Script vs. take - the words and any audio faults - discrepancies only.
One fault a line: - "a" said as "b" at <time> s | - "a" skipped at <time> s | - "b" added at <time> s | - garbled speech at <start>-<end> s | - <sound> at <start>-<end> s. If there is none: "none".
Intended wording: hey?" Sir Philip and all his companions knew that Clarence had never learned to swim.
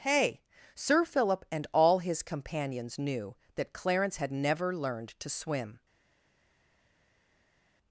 none